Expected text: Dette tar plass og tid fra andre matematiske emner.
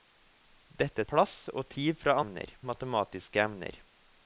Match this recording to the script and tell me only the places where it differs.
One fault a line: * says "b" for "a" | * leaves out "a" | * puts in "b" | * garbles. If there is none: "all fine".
* leaves out "tar"
* says "emner" for "andre"